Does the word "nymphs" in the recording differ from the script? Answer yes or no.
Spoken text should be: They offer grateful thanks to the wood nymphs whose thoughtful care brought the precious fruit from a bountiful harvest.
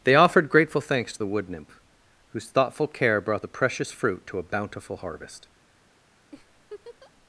yes